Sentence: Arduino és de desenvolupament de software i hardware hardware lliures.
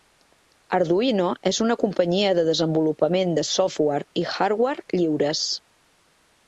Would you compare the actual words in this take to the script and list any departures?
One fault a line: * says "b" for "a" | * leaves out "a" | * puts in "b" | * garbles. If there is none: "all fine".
* puts in "una companyia"
* leaves out "hardware"